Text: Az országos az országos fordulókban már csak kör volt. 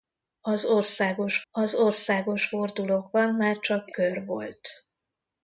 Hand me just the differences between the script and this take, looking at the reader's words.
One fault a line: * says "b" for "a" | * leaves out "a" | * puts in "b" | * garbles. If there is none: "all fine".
all fine